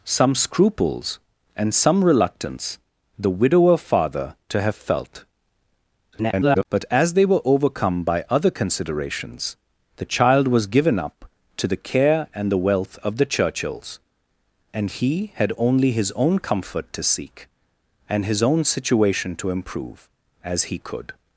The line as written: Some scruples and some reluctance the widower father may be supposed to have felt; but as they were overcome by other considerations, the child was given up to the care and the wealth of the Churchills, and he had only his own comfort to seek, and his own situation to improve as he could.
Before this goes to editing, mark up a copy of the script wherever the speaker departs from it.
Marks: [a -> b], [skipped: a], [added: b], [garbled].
Some scruples and some reluctance the widower father [skipped: may be supposed] to have felt; [garbled] but as they were overcome by other considerations, the child was given up to the care and the wealth of the Churchills, and he had only his own comfort to seek, and his own situation to improve as he could.